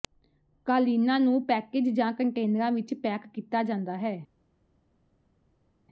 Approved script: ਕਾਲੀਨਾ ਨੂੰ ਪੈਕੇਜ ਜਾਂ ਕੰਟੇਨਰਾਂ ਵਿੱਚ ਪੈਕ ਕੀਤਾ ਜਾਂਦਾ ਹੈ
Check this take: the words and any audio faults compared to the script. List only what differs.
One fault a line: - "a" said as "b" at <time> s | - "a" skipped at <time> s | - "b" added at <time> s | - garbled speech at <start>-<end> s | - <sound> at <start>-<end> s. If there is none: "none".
none